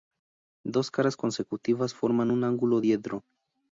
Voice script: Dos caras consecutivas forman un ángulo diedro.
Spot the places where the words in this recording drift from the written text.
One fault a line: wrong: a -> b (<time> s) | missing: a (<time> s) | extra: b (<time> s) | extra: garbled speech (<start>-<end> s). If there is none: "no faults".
no faults